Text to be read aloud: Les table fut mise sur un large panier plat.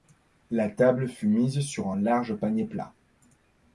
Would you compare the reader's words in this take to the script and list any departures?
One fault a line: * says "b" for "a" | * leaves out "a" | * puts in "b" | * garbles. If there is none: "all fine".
* says "La" for "Les"